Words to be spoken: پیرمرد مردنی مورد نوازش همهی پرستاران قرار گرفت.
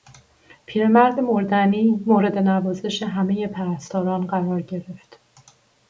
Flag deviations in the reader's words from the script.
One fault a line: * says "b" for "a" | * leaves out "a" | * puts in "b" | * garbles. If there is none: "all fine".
all fine